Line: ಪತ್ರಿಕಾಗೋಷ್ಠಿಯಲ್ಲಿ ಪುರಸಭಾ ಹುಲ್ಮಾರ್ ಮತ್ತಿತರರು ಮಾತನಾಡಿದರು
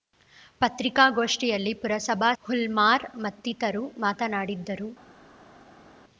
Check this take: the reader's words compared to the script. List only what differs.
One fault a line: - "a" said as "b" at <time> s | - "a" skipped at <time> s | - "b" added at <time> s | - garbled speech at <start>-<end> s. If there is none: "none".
none